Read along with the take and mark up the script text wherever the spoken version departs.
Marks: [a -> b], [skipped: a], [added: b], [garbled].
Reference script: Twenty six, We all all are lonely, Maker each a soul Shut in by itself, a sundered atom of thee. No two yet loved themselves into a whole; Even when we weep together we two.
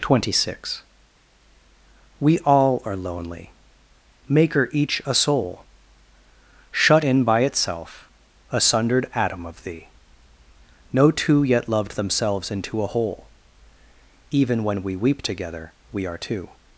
Twenty six, We all [skipped: all] are lonely, Maker each a soul Shut in by itself, a sundered atom of thee. No two yet loved themselves into a whole; Even when we weep together we [added: are] two.